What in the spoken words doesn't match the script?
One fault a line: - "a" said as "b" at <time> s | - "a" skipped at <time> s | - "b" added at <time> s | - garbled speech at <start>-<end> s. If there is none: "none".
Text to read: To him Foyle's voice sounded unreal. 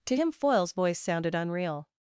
none